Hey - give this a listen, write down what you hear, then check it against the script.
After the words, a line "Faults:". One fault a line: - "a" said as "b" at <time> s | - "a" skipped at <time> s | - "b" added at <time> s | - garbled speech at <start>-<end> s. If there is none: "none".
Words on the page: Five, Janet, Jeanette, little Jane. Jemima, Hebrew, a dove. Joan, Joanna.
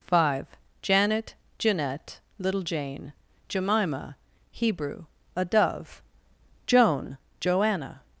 Five, Janet, Jeanette, little Jane. Jemima, Hebrew, a dove. Joan, Joanna.
Faults:
none